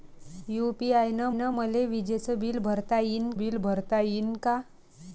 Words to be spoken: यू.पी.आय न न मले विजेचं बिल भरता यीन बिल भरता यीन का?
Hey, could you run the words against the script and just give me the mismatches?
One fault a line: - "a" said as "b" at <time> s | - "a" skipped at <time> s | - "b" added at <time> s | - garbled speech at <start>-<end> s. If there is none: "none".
none